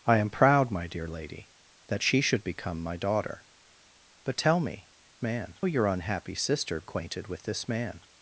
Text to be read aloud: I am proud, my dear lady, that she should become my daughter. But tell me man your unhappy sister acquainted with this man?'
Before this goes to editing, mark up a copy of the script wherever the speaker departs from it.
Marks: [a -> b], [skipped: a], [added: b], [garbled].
I am proud, my dear lady, that she should become my daughter. But tell me man your unhappy sister acquainted with this man?'